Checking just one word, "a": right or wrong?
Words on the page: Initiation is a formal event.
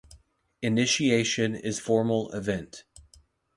wrong